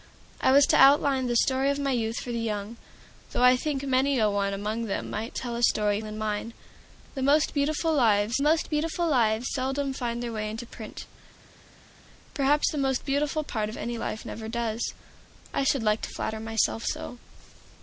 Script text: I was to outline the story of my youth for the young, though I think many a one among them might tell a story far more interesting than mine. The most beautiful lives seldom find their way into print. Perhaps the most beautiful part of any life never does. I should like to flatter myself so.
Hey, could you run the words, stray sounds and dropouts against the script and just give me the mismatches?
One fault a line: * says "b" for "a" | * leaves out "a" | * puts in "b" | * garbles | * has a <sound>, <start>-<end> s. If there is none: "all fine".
* says "than mine The most beautiful lives" for "far more interesting than mine The"